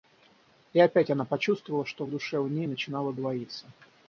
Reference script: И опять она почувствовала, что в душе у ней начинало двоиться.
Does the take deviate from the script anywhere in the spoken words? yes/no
no